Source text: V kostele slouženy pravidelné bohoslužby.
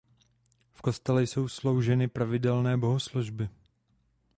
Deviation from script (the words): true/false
true